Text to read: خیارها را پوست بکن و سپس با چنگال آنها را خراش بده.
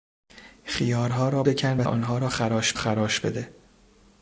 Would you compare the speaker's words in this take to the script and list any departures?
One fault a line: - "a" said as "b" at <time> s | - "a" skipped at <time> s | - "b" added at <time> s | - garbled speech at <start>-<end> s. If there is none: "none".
- "پوست" skipped at 1.4 s
- "سپس با چنگال" skipped at 1.9 s
- "خراش" added at 2.7 s